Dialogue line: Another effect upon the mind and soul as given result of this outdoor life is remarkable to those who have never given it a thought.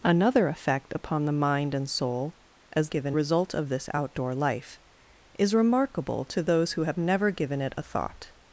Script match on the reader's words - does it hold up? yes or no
yes